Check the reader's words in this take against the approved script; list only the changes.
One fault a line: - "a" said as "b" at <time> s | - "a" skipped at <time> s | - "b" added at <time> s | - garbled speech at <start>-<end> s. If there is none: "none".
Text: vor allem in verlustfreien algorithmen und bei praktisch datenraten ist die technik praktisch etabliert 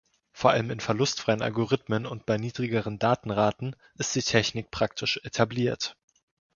- "praktisch" said as "niedrigeren" at 2.4 s